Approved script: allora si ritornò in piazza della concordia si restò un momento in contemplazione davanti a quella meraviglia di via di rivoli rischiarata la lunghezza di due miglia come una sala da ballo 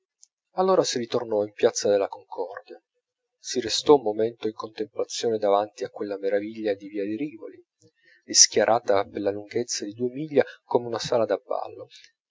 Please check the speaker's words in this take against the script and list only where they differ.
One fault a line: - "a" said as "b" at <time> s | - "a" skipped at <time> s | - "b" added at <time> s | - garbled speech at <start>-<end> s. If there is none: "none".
- "per" added at 9.1 s